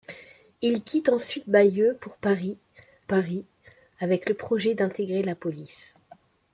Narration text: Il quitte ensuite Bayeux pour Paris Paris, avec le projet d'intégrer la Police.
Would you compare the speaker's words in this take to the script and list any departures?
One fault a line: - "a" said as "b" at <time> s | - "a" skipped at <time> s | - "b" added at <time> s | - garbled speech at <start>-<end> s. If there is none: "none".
none